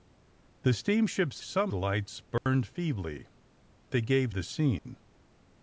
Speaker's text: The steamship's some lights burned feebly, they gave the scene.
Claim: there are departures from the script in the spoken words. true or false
false